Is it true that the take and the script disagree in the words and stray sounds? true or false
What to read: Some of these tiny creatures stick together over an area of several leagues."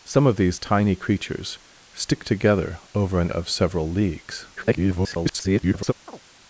true